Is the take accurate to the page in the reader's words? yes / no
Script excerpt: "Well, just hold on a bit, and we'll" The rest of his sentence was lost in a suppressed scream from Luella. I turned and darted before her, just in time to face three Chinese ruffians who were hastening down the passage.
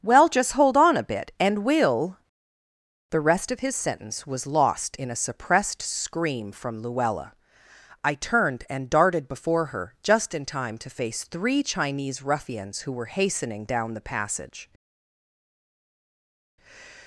yes